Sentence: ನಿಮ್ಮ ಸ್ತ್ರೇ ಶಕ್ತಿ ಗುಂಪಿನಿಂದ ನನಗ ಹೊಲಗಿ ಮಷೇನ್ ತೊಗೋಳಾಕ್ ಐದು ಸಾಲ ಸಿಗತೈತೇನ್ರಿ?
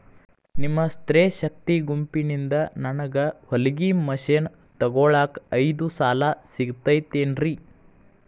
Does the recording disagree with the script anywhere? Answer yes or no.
no